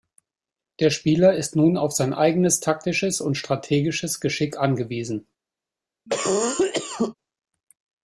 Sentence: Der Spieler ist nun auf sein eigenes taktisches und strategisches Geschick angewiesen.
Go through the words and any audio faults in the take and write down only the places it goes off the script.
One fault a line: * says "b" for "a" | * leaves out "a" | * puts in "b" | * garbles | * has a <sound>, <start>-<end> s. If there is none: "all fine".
* has a cough, 6.1-7.2 s